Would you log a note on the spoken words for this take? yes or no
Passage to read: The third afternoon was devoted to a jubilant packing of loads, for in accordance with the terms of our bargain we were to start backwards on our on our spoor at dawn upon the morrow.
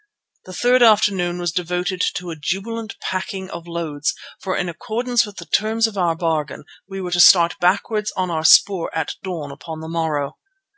yes